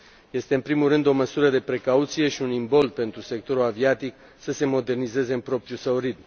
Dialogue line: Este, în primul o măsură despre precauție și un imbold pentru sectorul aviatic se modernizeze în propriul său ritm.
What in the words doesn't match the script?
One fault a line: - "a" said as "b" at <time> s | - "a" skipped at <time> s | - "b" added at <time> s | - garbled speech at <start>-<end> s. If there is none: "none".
- "rând" added at 0.9 s
- "despre" said as "de" at 1.5 s
- "să" added at 4.4 s